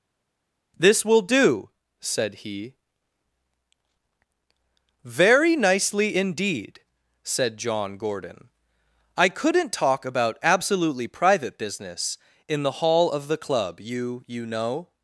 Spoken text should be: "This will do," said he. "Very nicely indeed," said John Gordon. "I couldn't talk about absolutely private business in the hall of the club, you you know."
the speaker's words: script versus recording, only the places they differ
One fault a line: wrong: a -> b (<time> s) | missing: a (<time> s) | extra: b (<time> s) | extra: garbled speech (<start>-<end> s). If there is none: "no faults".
no faults